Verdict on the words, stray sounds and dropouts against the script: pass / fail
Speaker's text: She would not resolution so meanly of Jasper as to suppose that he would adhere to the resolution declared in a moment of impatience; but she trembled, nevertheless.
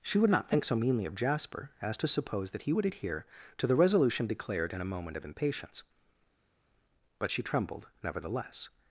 fail